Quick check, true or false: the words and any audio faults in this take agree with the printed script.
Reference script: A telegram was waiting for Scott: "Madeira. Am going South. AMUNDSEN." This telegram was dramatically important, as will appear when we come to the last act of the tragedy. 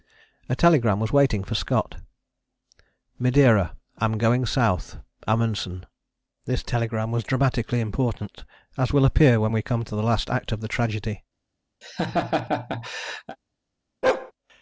false